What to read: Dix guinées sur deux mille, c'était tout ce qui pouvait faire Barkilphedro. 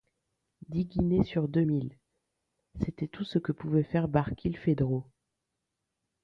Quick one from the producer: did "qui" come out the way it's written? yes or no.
no